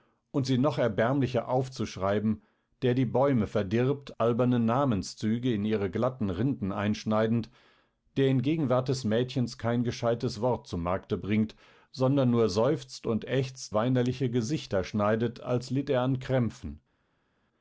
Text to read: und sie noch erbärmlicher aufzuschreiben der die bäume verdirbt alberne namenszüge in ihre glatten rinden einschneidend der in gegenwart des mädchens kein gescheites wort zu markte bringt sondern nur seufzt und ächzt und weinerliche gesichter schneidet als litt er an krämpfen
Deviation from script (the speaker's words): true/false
true